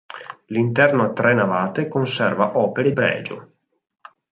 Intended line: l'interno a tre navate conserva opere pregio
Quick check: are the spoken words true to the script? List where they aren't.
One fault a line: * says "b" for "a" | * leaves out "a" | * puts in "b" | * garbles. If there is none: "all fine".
all fine